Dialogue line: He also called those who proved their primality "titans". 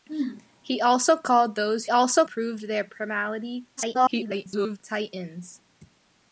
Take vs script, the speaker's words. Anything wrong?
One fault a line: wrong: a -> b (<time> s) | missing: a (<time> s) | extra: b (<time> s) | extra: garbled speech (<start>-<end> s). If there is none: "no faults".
wrong: who -> also (1.9 s)
extra: garbled speech (3.8-4.8 s)